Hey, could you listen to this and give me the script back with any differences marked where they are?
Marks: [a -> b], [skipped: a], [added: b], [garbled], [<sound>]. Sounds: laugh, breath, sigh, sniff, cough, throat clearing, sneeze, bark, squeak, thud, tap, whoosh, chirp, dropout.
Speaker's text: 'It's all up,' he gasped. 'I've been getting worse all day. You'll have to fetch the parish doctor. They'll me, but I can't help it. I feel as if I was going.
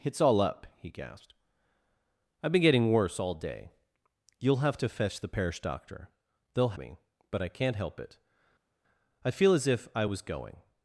'It's all up,' he gasped. 'I've been getting worse all day. You'll have to fetch the parish doctor. They'll me, but I can't help it. I feel as if I was going.